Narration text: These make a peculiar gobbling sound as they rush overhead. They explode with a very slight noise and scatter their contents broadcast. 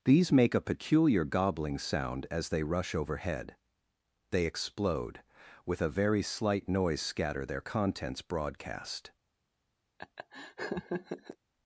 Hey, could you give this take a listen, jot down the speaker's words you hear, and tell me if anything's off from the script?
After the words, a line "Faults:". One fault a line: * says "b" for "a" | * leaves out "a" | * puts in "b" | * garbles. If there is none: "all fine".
These make a peculiar gobbling sound as they rush overhead. They explode with a very slight noise scatter their contents broadcast.
Faults:
* leaves out "and"